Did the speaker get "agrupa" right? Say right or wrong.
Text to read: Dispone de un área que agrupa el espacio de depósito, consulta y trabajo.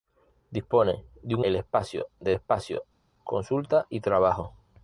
wrong